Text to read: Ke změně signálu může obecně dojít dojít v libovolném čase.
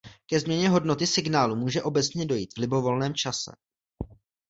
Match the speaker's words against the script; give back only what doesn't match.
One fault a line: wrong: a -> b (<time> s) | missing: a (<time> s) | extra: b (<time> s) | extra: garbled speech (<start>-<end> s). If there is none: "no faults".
extra: hodnoty (0.7 s)
missing: dojít (2.5 s)